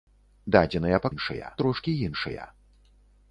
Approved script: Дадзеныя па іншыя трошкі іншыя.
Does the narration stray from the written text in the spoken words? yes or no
no